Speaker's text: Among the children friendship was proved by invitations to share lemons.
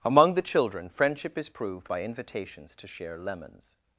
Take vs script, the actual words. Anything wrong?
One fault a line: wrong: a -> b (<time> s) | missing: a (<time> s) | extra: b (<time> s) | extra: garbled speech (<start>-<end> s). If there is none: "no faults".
wrong: was -> is (1.4 s)